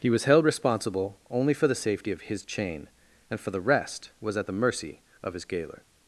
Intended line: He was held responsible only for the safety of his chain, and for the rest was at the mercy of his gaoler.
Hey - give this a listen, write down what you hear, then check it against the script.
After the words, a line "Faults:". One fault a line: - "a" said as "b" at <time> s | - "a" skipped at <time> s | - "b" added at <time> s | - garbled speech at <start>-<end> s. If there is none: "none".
He was held responsible only for the safety of his chain, and for the rest was at the mercy of his gaoler.
Faults:
none